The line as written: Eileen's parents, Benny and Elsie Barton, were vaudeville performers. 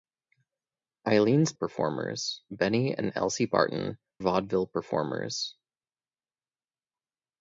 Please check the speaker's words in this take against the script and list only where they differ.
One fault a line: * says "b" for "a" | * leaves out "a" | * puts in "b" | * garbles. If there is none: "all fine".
* says "performers" for "parents"
* leaves out "were"